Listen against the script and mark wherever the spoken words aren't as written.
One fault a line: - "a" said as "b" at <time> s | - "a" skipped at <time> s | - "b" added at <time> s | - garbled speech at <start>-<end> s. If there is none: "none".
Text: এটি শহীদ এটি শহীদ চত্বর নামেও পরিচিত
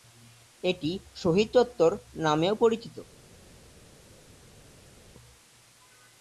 - "এটি শহীদ" skipped at 1.5 s